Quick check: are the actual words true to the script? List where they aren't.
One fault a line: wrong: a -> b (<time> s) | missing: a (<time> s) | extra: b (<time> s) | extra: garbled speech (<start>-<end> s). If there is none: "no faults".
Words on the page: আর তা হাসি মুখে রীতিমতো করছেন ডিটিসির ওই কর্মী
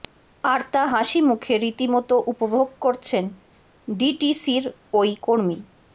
extra: উপভোগ (2.3 s)